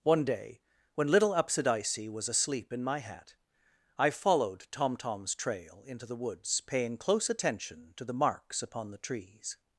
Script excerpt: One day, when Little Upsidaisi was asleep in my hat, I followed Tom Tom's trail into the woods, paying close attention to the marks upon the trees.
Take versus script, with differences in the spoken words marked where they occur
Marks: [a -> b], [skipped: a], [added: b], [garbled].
One day, when Little Upsidaisi was asleep in my hat, I followed Tom Tom's trail into the woods, paying close attention to the marks upon the trees.